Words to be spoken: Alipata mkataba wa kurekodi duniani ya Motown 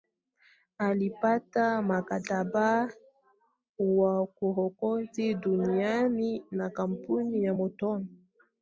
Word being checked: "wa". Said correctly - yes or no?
yes